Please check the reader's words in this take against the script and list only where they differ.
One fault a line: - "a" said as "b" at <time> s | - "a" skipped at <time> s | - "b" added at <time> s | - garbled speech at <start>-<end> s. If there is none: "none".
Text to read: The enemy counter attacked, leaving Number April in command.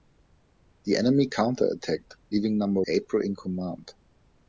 none